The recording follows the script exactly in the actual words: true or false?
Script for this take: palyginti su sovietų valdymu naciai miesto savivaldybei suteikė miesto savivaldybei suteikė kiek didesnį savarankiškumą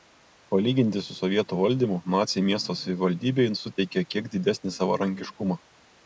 false